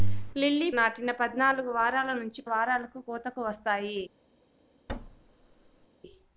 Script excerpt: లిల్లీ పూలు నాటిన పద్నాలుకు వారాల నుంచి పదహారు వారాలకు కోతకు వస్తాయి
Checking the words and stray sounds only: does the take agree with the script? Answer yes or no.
no